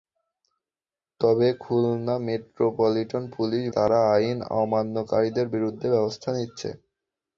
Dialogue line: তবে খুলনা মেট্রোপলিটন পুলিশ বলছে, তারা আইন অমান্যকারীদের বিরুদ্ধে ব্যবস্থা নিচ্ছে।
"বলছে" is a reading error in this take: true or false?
true